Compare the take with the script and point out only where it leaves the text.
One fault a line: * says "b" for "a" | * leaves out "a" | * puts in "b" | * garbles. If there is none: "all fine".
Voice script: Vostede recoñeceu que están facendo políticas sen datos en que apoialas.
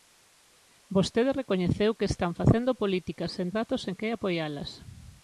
all fine